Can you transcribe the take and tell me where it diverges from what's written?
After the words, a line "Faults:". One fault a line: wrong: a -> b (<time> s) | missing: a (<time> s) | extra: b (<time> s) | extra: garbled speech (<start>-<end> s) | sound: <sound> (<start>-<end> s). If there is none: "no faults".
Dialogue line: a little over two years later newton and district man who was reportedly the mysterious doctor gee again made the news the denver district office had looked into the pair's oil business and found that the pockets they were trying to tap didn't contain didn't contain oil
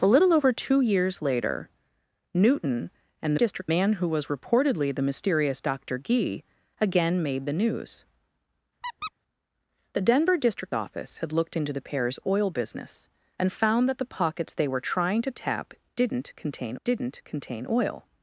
a little over two years later newton and district man who was reportedly the mysterious doctor gee again made the news the denver district office had looked into the pair's oil business and found that the pockets they were trying to tap didn't contain didn't contain oil
Faults:
sound: squeak (8.8-9.1 s)